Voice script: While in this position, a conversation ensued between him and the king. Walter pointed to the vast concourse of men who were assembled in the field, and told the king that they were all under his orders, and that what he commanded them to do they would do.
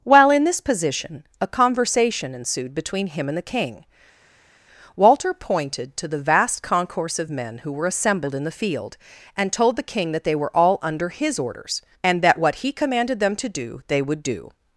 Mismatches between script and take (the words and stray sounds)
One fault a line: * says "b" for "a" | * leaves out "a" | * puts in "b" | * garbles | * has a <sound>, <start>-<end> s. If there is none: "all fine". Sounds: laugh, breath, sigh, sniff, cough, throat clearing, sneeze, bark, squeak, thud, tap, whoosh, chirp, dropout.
all fine